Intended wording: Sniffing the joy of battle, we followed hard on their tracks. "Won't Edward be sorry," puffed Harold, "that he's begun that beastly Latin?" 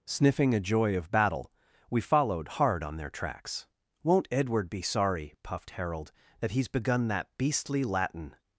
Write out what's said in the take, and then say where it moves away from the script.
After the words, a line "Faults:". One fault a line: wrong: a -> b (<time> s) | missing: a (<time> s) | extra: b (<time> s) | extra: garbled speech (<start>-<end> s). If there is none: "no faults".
Sniffing a joy of battle, we followed hard on their tracks. "Won't Edward be sorry," puffed Harold, "that he's begun that beastly Latin?"
Faults:
wrong: the -> a (0.5 s)